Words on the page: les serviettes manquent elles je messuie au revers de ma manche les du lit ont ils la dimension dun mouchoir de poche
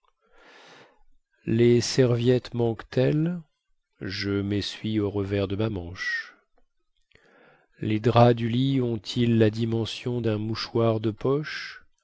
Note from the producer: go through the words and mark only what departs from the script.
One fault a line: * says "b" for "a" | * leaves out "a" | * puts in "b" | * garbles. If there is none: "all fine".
* puts in "draps"